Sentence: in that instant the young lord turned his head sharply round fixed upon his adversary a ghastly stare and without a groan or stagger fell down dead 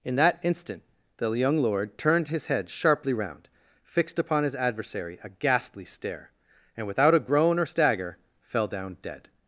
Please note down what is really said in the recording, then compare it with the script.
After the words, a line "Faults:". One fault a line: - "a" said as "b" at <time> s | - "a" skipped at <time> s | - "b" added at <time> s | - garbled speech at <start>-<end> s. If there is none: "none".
in that instant the young lord turned his head sharply round fixed upon his adversary a ghastly stare and without a groan or stagger fell down dead
Faults:
none